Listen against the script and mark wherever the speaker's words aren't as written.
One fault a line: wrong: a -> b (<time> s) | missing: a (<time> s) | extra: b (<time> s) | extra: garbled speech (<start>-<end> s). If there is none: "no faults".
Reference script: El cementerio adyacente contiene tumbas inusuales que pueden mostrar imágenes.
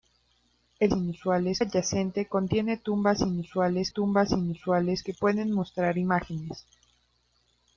wrong: cementerio -> inusuales (0.9 s)
extra: tumbas inusuales (3.9 s)